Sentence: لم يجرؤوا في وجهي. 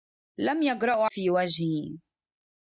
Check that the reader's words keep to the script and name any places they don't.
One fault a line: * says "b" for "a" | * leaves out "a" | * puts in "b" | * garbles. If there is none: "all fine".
all fine